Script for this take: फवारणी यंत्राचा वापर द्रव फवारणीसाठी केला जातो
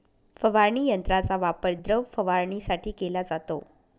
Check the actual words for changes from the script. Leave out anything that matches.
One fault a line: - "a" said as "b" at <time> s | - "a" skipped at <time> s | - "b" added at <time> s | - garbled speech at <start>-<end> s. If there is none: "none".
none